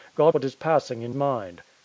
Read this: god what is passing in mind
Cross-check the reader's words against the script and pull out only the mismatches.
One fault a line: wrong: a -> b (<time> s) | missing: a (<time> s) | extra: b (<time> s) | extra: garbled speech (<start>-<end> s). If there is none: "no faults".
no faults